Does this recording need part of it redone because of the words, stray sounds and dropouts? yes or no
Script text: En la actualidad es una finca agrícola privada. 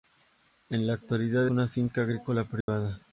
yes